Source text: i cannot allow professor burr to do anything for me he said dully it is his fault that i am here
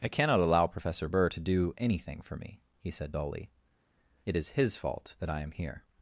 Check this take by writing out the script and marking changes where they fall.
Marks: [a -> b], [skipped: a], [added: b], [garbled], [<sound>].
i cannot allow professor burr to do anything for me he said dully it is his fault that i am here